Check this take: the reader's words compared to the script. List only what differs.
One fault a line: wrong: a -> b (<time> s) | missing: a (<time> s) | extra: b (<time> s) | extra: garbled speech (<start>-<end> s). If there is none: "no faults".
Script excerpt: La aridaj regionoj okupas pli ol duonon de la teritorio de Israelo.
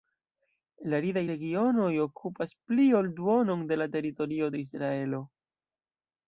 no faults